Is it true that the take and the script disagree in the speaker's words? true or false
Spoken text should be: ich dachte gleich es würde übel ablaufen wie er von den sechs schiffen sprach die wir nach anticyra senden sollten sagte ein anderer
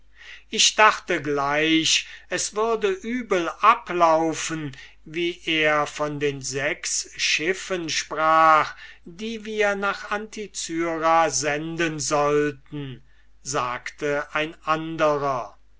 false